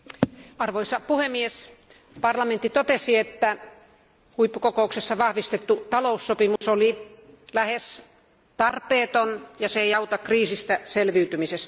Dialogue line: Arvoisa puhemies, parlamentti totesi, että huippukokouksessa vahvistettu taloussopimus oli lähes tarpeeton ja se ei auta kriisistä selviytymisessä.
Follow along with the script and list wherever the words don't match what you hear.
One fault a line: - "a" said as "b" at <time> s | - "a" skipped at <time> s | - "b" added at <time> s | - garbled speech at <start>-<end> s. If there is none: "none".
none